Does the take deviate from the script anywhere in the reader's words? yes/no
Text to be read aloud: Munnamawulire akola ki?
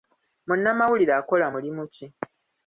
yes